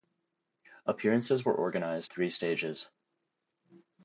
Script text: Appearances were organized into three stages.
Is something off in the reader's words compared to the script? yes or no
yes